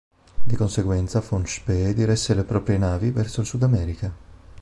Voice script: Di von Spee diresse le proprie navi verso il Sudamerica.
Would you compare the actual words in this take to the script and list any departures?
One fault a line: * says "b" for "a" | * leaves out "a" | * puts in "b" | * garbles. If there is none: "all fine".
* puts in "conseguenza"